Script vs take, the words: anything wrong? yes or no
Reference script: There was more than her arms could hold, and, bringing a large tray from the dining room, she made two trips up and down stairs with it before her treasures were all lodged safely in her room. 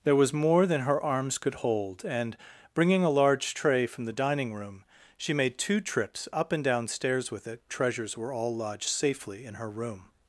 yes